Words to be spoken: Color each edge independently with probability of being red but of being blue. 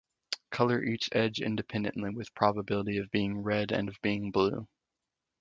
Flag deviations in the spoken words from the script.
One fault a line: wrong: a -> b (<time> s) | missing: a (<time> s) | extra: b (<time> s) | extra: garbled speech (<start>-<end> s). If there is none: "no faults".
wrong: but -> and (3.7 s)